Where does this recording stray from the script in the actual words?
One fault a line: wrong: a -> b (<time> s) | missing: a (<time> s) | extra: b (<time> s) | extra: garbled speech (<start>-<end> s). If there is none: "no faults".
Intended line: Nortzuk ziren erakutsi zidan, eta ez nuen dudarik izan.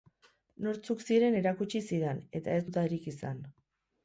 missing: nuen (2.7 s)